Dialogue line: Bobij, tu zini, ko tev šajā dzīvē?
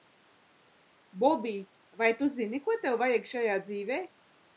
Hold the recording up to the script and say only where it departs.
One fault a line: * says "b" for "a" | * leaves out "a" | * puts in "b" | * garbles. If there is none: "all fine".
* puts in "vai"
* puts in "vajag"